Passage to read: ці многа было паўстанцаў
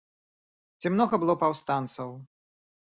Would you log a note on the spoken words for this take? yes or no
no